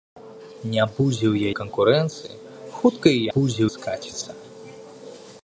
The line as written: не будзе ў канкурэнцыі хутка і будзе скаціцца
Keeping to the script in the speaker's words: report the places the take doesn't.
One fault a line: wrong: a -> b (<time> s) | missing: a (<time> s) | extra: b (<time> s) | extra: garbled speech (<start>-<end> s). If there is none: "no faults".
no faults